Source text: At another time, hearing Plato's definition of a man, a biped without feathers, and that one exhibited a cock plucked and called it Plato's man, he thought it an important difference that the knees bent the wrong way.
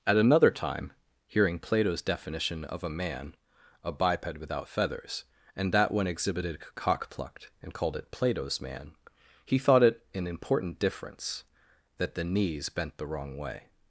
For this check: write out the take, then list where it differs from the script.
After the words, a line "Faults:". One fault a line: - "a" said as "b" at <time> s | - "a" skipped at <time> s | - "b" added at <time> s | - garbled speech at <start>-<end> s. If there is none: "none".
At another time, hearing Plato's definition of a man, a biped without feathers, and that one exhibited cock plucked and called it Plato's man, he thought it an important difference that the knees bent the wrong way.
Faults:
- "a" skipped at 6.6 s